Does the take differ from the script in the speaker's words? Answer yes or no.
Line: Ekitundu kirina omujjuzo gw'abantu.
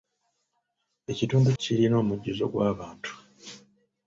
no